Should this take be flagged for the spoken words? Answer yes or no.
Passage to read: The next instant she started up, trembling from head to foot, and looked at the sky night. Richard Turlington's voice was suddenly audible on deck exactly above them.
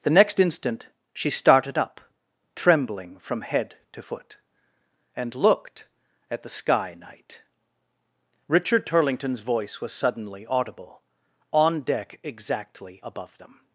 no